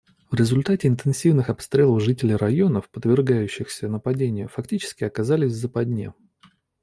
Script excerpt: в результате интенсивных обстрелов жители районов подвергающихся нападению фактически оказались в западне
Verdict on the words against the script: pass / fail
pass